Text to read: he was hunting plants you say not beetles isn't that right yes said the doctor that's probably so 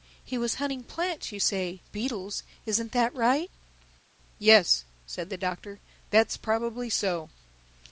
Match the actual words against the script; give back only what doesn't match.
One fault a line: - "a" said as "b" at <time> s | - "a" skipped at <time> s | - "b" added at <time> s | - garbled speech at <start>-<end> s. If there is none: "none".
- "not" skipped at 1.8 s